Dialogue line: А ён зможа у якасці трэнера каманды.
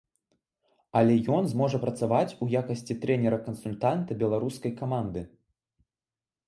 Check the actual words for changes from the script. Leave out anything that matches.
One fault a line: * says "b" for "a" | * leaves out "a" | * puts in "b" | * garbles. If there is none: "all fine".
* says "Але" for "А"
* puts in "працаваць"
* puts in "кансультанта беларускай"